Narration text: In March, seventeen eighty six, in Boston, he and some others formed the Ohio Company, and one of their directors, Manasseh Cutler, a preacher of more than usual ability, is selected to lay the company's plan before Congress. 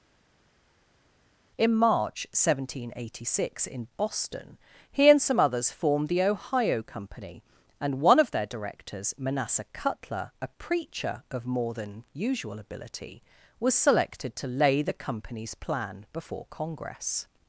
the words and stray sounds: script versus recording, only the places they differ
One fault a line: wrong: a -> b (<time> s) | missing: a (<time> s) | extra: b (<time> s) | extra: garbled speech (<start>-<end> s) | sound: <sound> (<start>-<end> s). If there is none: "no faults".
wrong: is -> was (13.6 s)